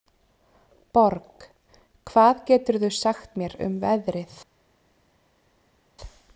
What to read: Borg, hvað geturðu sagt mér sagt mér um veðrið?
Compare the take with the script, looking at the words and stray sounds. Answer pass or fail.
fail